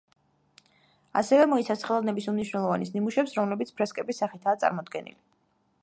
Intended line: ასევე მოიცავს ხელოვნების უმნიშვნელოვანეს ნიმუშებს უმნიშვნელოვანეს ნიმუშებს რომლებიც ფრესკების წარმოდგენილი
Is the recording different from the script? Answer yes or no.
yes